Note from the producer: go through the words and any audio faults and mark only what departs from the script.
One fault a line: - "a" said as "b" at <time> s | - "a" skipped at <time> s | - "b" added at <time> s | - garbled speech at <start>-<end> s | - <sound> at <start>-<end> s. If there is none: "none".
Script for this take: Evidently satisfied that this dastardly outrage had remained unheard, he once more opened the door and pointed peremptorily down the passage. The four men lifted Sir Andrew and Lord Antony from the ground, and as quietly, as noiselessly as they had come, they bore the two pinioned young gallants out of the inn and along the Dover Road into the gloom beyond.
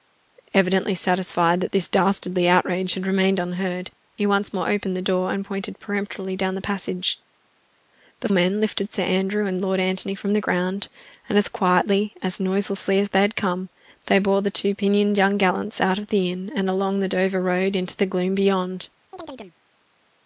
- "four" skipped at 8.3 s
- chirp at 19.1-19.6 s